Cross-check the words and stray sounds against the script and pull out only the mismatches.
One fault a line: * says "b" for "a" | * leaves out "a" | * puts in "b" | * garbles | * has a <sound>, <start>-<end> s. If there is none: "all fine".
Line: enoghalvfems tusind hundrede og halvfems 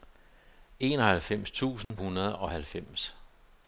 * has a dropout, 1.8-1.9 s